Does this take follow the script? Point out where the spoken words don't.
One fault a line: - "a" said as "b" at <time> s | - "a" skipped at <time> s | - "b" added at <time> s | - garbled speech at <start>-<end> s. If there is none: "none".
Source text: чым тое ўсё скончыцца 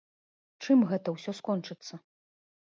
- "тое" said as "гэта" at 0.9 s